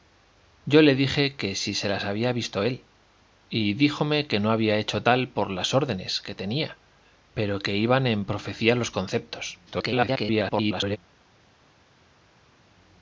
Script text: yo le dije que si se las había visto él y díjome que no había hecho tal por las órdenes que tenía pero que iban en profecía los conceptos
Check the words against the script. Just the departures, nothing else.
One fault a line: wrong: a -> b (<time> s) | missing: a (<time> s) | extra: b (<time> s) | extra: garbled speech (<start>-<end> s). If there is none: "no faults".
extra: garbled speech (9.7-11.0 s)